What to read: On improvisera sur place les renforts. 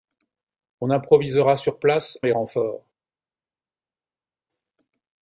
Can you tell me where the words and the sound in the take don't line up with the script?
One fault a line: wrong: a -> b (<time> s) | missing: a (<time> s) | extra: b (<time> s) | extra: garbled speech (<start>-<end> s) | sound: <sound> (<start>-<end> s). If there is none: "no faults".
no faults